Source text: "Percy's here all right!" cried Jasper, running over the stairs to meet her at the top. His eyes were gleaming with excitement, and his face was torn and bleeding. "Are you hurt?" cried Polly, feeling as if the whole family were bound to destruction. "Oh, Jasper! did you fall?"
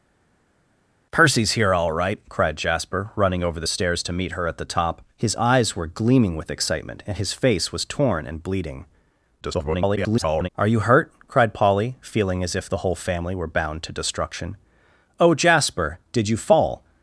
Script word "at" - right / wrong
right